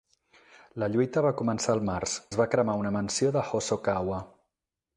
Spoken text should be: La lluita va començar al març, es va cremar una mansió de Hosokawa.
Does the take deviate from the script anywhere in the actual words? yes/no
no